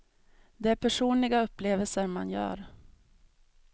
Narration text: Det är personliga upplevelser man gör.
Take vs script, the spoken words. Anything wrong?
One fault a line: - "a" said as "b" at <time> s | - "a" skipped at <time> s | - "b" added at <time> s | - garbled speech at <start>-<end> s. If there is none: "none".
none